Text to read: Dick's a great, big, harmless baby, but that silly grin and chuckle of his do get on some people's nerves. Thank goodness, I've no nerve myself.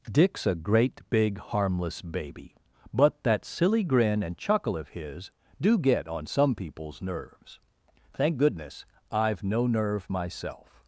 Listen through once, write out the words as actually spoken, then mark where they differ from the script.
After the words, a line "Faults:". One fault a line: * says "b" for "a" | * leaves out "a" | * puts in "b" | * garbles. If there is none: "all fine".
Dick's a great, big, harmless baby, but that silly grin and chuckle of his do get on some people's nerves. Thank goodness, I've no nerve myself.
Faults:
all fine